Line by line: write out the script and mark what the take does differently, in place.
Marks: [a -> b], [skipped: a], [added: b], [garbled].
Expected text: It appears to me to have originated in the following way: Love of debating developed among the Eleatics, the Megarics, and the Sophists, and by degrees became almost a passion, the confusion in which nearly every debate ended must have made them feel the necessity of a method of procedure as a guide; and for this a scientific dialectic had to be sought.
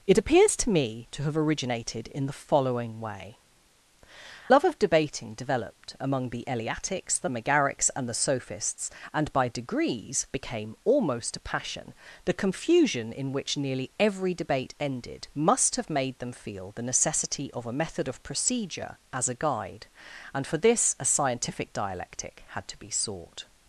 It appears to me to have originated in the following way: Love of debating developed among the Eleatics, the Megarics, and the Sophists, and by degrees became almost a passion, the confusion in which nearly every debate ended must have made them feel the necessity of a method of procedure as a guide; and for this a scientific dialectic had to be sought.